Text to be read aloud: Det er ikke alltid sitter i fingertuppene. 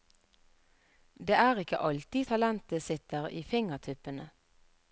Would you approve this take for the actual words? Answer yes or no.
no